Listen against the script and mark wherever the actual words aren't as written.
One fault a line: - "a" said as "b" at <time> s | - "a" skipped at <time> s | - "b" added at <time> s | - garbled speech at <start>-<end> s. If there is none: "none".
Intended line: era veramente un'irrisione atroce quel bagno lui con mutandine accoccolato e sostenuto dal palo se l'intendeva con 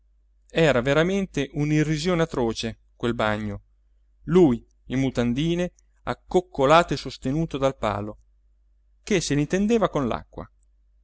- "con" said as "in" at 4.8 s
- "che" added at 9.0 s